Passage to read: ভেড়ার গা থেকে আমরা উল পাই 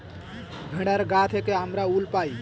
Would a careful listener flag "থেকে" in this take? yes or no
no